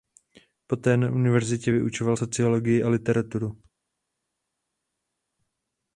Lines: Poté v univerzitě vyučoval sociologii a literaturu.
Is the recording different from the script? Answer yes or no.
yes